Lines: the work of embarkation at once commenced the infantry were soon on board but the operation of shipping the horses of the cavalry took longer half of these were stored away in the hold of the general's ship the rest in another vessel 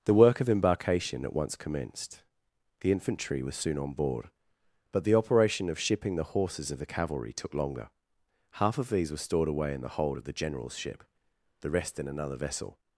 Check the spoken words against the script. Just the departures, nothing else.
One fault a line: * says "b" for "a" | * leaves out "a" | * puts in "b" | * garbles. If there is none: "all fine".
* says "was" for "were"